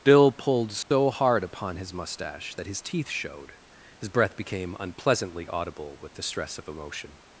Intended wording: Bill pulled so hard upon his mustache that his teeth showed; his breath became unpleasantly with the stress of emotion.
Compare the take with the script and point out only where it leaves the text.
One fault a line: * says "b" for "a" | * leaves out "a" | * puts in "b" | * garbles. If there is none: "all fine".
* puts in "audible"